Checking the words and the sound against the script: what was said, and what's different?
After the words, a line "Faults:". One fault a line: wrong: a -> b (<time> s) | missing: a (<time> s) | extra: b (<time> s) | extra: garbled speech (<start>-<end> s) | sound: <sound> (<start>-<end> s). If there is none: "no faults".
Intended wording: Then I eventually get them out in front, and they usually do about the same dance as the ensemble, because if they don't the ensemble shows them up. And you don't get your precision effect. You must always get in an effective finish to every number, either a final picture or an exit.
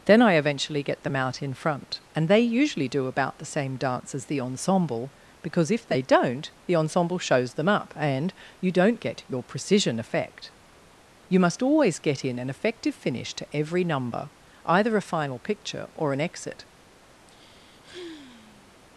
Then I eventually get them out in front, and they usually do about the same dance as the ensemble, because if they don't the ensemble shows them up. And you don't get your precision effect. You must always get in an effective finish to every number, either a final picture or an exit.
Faults:
sound: sigh (17.3-18.8 s)